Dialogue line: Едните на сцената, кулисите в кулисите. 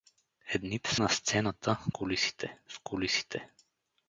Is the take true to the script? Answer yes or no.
yes